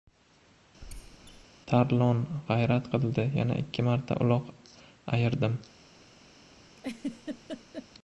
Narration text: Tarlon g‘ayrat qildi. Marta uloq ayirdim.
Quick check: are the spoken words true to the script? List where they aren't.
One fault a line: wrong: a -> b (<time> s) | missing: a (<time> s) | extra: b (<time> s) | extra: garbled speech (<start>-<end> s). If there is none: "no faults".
extra: Yana ikki (3.4 s)